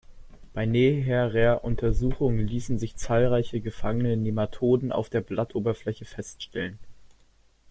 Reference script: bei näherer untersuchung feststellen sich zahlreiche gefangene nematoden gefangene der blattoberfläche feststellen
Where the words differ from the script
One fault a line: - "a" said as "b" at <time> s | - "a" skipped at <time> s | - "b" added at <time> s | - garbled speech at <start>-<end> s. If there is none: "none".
- "feststellen" said as "ließen" at 2.4 s
- "gefangene" said as "auf" at 4.9 s